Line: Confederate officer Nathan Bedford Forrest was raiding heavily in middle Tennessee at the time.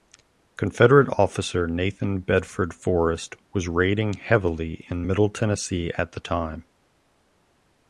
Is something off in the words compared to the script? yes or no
no